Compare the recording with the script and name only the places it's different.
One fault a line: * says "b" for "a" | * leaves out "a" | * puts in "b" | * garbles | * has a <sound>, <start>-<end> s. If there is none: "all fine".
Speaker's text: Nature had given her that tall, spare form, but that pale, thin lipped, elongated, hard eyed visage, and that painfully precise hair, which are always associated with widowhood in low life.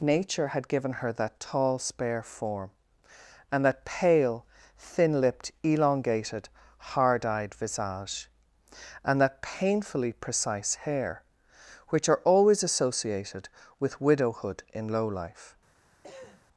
* says "and" for "but"
* has a cough, 16.0-16.5 s